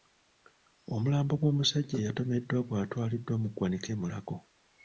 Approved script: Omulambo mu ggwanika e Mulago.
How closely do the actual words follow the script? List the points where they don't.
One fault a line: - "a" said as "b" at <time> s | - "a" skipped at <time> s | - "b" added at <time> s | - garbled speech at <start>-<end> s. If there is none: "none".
- "gw'omusajja eyatomeddwa gwatwaliddwa" added at 1.4 s